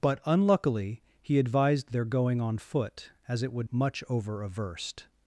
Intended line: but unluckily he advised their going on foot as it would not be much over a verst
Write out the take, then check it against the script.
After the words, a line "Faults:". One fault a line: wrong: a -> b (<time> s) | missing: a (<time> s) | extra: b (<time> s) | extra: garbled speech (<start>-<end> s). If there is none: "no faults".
but unluckily he advised their going on foot as it would much over a verst
Faults:
missing: not be (3.7 s)